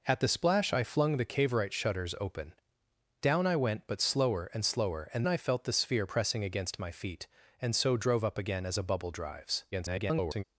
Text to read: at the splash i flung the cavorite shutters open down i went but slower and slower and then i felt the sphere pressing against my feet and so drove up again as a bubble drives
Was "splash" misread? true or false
false